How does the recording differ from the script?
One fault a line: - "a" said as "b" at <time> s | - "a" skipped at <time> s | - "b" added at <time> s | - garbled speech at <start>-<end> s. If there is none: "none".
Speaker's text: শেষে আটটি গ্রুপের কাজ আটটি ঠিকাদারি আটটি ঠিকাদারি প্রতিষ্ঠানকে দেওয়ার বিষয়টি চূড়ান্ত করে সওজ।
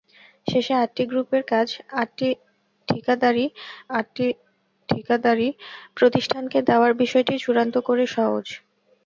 none